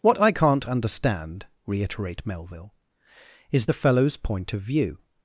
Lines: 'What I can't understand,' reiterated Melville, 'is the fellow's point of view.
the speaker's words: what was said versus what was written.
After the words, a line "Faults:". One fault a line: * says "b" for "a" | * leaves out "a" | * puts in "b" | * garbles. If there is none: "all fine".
'What I can't understand,' reiterate Melville, 'is the fellow's point of view.
Faults:
* says "reiterate" for "reiterated"